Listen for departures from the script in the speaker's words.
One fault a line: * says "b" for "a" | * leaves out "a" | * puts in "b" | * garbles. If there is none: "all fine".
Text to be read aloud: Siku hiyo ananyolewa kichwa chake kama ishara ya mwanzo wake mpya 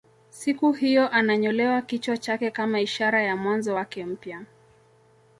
all fine